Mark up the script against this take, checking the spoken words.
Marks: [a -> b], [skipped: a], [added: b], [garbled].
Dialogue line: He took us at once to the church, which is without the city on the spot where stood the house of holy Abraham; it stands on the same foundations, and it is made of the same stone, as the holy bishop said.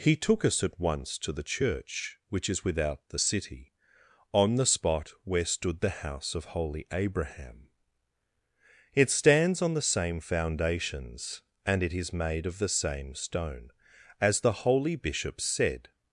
He took us at once to the church, which is without the city on the spot where stood the house of holy Abraham; it stands on the same foundations, and it is made of the same stone, as the holy bishop said.